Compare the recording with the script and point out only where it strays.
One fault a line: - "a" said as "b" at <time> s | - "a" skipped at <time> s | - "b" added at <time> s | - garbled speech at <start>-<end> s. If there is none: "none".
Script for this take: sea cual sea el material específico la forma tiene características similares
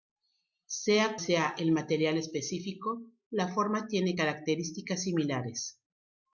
- "cual" skipped at 1.1 s